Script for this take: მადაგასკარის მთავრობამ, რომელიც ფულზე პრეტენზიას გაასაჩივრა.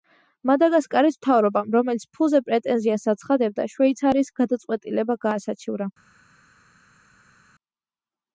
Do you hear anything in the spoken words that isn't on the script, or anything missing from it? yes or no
yes